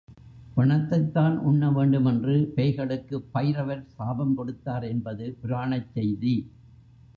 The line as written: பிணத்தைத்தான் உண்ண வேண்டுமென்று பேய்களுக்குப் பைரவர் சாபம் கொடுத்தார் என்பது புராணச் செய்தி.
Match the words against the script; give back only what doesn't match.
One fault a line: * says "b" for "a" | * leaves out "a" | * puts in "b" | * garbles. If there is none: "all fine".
all fine